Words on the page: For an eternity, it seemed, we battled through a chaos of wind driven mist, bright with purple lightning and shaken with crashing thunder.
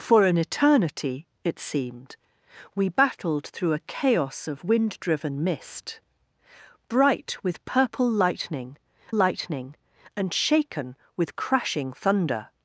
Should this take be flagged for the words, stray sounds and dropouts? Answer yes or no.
yes